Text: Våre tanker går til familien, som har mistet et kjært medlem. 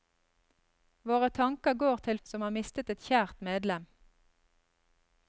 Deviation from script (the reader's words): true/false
true